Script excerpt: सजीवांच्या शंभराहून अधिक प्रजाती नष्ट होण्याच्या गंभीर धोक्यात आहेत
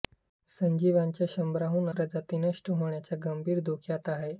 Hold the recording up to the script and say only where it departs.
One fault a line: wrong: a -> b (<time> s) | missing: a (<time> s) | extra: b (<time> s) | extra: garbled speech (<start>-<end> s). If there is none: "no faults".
missing: अधिक (1.9 s)